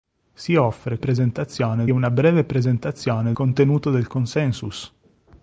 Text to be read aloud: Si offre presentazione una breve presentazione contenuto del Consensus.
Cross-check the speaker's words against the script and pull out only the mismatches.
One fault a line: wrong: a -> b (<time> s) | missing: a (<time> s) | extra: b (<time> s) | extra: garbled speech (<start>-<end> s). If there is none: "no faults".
no faults